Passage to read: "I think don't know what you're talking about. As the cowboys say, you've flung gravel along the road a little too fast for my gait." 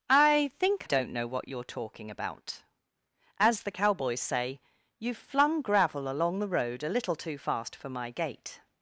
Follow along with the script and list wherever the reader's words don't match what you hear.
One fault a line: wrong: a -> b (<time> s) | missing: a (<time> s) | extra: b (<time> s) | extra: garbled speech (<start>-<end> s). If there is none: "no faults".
no faults